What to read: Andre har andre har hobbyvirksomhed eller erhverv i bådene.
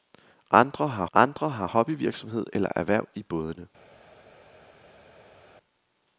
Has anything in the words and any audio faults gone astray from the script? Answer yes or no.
no